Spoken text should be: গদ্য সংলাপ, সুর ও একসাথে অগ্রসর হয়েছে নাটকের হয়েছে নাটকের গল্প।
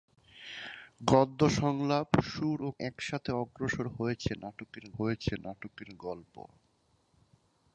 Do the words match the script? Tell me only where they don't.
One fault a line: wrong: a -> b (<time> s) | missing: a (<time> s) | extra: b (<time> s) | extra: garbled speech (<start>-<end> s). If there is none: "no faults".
no faults